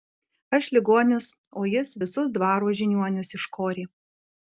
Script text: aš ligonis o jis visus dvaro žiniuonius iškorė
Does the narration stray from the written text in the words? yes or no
no